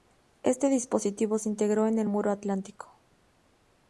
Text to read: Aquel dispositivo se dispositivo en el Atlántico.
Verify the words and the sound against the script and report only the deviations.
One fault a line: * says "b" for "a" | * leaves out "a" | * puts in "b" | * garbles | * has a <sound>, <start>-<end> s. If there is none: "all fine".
* says "Este" for "Aquel"
* says "integró" for "dispositivo"
* puts in "Muro"